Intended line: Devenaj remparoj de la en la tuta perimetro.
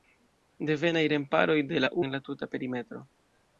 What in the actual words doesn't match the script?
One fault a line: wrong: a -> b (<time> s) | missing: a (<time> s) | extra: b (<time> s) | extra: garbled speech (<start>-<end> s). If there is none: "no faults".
no faults